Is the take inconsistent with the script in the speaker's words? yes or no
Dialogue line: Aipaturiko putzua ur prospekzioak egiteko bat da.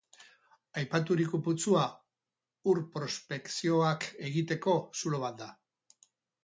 yes